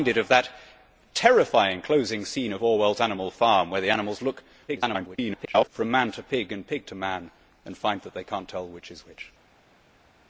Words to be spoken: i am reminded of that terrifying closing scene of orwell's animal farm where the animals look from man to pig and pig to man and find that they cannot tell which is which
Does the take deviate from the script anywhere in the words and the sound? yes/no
yes